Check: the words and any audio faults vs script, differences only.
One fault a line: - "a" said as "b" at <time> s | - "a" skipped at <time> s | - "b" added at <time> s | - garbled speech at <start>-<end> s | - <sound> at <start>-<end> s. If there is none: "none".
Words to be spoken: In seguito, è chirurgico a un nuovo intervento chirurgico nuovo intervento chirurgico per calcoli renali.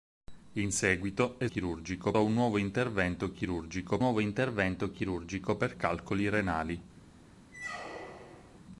- squeak at 7.5-8.6 s